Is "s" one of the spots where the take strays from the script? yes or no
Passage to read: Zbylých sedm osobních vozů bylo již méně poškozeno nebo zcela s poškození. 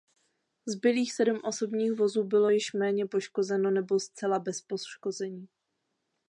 yes